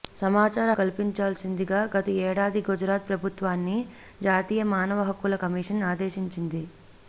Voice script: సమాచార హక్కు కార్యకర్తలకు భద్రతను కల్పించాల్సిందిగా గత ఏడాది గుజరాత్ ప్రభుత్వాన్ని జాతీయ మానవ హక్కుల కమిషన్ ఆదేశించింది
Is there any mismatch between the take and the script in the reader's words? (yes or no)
yes